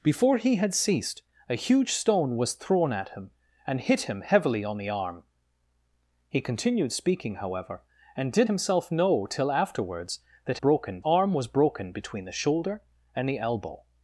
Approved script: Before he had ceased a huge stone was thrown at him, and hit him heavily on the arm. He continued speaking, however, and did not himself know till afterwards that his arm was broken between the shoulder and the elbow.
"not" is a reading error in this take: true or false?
true